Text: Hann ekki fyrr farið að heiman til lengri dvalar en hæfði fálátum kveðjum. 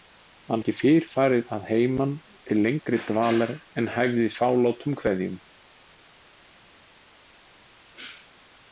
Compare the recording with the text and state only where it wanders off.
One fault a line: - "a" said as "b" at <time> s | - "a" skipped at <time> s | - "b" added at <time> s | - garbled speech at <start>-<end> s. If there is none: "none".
none